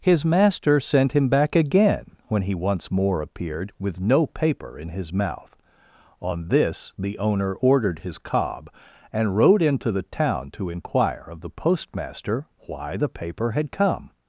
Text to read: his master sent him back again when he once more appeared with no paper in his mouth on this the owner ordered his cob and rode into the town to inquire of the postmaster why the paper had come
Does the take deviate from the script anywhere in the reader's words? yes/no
no